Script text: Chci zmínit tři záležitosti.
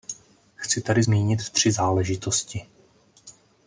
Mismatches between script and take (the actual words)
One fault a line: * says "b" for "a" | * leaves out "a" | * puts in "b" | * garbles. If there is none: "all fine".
* puts in "tady"